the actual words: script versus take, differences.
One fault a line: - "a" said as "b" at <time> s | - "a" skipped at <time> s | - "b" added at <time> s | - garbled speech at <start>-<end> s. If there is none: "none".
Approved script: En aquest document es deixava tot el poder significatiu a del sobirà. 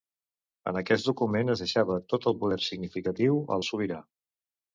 none